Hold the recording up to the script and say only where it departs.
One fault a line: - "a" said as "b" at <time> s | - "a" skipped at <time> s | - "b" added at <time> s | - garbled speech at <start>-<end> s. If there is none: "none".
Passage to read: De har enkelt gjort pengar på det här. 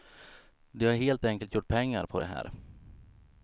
- "helt" added at 0.9 s